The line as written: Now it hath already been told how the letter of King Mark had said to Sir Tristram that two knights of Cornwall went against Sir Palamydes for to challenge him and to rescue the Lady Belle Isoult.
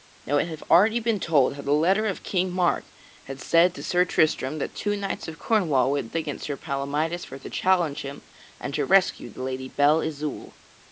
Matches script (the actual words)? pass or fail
pass